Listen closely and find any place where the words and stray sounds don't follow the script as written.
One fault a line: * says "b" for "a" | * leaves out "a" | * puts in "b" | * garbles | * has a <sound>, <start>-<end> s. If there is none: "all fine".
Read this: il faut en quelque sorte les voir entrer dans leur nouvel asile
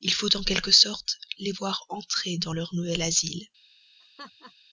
* has a laugh, 4.0-4.5 s